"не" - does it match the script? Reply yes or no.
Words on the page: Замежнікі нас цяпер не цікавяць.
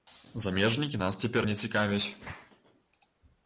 yes